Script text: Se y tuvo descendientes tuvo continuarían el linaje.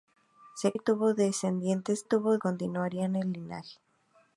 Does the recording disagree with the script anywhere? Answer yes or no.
no